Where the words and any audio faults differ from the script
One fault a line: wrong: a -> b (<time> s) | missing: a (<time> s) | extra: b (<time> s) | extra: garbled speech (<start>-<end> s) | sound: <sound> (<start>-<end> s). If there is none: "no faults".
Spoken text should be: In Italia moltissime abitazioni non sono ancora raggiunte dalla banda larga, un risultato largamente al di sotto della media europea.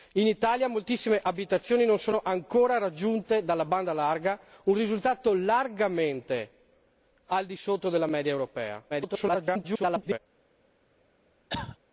extra: garbled speech (8.9-10.2 s)
sound: cough (11.5-11.8 s)